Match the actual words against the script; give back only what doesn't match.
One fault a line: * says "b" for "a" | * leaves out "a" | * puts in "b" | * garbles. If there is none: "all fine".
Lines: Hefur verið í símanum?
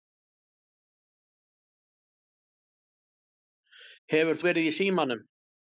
all fine